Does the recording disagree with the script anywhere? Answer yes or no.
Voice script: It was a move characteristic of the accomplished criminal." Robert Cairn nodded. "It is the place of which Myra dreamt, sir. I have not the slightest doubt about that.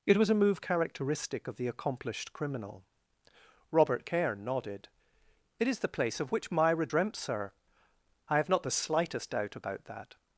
no